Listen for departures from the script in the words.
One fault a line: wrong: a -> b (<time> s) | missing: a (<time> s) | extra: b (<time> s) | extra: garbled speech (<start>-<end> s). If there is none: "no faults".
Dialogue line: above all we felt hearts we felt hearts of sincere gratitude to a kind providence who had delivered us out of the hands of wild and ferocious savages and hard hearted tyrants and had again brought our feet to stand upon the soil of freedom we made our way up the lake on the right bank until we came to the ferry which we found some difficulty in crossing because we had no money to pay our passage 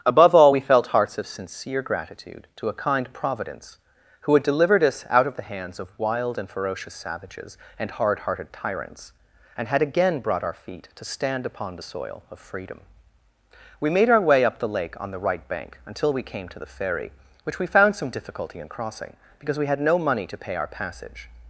missing: we felt hearts (1.2 s)